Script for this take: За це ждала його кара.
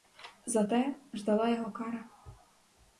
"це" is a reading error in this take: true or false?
true